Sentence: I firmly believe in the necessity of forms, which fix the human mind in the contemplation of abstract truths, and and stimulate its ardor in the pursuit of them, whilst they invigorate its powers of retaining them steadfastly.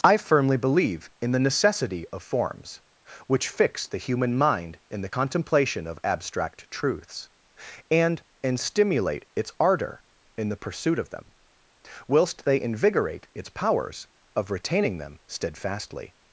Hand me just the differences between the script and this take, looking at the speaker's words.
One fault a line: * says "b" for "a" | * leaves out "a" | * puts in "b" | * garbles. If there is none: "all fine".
all fine